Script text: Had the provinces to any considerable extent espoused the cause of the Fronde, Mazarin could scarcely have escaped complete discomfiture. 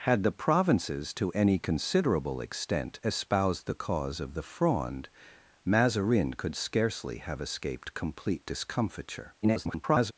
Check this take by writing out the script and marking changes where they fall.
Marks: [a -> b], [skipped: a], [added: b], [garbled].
Had the provinces to any considerable extent espoused the cause of the Fronde, Mazarin could scarcely have escaped complete discomfiture. [garbled]